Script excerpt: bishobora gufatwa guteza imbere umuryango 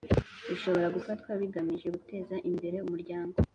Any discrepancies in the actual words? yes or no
yes